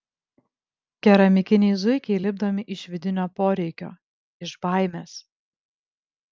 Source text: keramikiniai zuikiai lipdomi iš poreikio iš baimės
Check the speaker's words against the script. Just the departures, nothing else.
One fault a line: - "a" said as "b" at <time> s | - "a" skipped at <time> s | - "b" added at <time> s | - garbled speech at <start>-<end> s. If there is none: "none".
- "vidinio" added at 2.9 s